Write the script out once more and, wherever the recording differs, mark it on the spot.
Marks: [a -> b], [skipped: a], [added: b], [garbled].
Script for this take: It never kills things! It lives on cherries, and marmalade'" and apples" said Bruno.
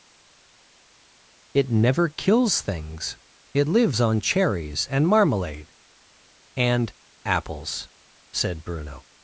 It never kills things! It lives on cherries, and marmalade'" and apples" said Bruno.